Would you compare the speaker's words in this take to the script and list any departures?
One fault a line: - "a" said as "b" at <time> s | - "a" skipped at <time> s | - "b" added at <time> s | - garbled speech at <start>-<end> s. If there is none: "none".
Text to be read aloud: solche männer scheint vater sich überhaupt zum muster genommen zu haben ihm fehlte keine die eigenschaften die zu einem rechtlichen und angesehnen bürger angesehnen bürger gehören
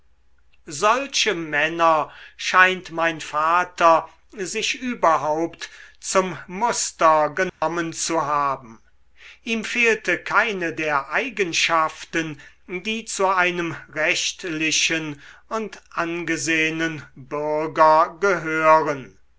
- "mein" added at 2.9 s
- "die" said as "der" at 10.7 s
- "angesehnen bürger" skipped at 18.2 s